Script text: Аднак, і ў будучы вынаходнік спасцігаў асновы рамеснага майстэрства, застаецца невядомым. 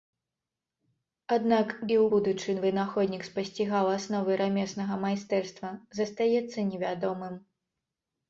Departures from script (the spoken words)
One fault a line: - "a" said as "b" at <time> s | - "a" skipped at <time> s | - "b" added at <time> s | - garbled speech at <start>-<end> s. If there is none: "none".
none